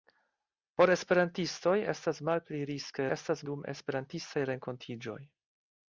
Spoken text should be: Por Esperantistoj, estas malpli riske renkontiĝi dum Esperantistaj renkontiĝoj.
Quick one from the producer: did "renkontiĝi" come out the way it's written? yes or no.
no